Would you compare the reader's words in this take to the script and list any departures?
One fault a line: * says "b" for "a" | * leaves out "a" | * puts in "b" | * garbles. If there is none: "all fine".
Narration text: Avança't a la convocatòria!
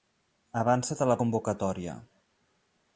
all fine